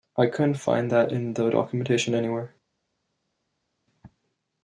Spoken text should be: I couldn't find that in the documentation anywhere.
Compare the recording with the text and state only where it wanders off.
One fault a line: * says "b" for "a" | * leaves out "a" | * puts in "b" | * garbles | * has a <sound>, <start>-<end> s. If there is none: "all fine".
all fine